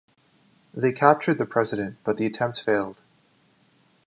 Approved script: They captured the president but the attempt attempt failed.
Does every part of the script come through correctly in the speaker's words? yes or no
no